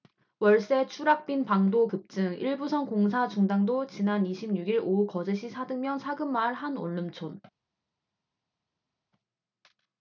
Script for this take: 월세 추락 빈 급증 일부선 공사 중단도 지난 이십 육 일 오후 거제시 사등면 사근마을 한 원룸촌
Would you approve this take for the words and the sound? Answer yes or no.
no